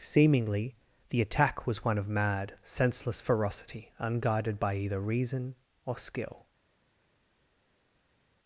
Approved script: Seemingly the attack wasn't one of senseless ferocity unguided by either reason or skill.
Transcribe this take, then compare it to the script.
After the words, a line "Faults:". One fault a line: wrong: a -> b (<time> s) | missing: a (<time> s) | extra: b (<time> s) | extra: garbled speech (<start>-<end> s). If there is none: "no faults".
Seemingly the attack was one of mad, senseless ferocity unguided by either reason or skill.
Faults:
wrong: wasn't -> was (1.7 s)
extra: mad (2.1 s)